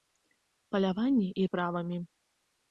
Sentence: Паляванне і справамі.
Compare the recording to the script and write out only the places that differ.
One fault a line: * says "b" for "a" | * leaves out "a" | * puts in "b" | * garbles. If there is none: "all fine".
all fine